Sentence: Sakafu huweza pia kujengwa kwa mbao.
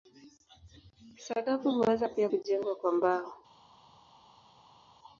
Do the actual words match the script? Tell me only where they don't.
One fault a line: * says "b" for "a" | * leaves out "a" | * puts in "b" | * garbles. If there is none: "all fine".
all fine